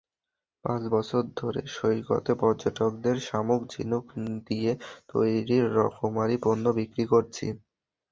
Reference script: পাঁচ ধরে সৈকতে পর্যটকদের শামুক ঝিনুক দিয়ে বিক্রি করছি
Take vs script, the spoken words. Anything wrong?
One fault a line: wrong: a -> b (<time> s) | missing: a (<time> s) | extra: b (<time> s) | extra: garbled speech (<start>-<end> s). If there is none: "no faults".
extra: বছর (0.9 s)
extra: তৈরি রকমারি পণ্য (5.1 s)